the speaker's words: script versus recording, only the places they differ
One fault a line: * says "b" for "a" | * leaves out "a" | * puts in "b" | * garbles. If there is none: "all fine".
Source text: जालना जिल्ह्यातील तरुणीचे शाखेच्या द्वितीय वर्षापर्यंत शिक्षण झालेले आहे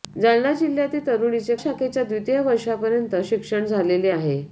all fine